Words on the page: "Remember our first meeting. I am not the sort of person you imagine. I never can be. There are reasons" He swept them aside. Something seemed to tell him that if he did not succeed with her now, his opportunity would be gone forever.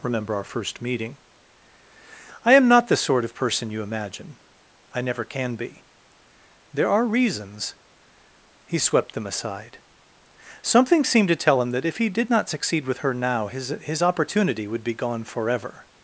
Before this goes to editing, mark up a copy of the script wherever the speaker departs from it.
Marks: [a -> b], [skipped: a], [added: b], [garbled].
"Remember our first meeting. I am not the sort of person you imagine. I never can be. There are reasons" He swept them aside. Something seemed to tell him that if he did not succeed with her now, his [added: his] opportunity would be gone forever.